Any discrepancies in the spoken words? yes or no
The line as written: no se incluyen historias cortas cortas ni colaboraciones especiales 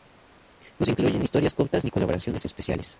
yes